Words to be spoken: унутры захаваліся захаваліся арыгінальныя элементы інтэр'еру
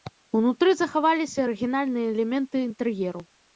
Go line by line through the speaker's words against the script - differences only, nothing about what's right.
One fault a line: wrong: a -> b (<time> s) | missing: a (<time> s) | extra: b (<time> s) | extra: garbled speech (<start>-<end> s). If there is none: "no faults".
missing: захаваліся (1.4 s)